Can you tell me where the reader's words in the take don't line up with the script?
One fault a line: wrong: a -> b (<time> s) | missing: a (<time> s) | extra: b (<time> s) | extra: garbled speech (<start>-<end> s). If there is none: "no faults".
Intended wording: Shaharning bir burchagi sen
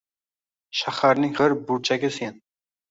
no faults